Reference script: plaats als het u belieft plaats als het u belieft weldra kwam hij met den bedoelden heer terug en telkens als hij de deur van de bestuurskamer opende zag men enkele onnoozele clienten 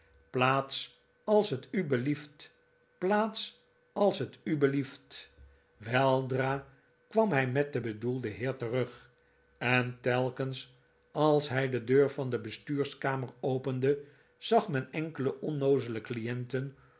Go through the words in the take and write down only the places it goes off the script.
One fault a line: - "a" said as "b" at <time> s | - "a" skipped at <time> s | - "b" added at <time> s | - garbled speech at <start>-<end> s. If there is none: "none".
none